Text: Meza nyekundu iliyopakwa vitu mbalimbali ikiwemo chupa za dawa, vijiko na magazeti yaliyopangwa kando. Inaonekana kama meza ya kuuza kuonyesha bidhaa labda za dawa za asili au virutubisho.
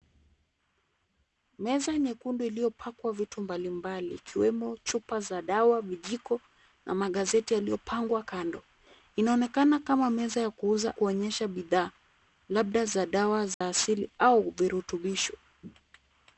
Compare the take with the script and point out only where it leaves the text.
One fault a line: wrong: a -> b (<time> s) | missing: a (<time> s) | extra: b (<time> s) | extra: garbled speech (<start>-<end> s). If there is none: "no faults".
no faults